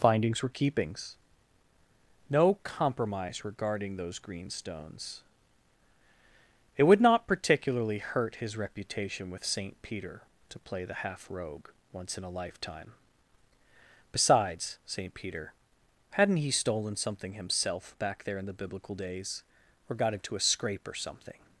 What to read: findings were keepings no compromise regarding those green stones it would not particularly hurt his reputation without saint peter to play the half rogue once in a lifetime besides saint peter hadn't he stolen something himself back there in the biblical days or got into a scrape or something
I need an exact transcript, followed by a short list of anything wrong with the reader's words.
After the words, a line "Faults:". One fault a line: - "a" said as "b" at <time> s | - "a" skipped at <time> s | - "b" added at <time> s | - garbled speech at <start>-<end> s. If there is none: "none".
findings were keepings no compromise regarding those green stones it would not particularly hurt his reputation with saint peter to play the half rogue once in a lifetime besides saint peter hadn't he stolen something himself back there in the biblical days or got into a scrape or something
Faults:
- "without" said as "with" at 9.3 s